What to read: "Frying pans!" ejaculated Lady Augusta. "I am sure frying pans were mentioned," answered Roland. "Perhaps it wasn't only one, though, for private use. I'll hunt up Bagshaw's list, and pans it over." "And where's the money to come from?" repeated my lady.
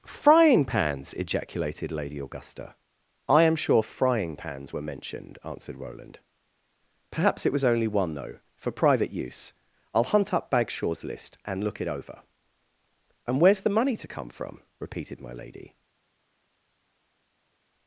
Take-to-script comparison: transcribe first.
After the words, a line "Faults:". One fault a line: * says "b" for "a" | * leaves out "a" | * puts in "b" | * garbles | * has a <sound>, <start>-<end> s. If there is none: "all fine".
"Frying pans!" ejaculated Lady Augusta. "I am sure frying pans were mentioned," answered Roland. "Perhaps it was only one, though, for private use. I'll hunt up Bagshaw's list, and look it over." "And where's the money to come from?" repeated my lady.
Faults:
* says "was" for "wasn't"
* says "look" for "pans"